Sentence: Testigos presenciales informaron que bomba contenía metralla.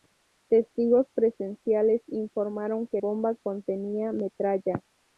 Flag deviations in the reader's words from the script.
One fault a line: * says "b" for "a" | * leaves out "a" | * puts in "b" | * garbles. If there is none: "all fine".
all fine